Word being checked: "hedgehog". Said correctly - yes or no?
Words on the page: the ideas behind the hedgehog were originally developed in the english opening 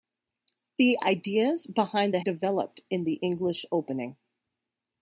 no